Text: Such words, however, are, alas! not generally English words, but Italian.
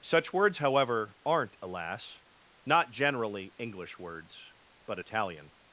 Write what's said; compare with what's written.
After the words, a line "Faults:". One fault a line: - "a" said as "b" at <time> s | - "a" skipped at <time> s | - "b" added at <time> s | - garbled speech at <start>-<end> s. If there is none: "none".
Such words, however, aren't, alas! not generally English words, but Italian.
Faults:
- "are" said as "aren't" at 1.2 s